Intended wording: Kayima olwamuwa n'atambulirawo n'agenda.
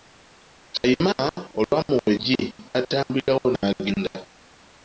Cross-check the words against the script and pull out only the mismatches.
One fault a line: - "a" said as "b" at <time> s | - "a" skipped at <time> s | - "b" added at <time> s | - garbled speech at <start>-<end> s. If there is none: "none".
- "eggi" added at 2.1 s